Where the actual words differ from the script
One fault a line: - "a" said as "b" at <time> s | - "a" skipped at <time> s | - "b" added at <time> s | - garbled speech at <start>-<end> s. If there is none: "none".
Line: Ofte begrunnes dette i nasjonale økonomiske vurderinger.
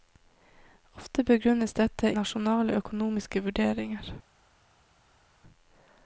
- "i" skipped at 2.1 s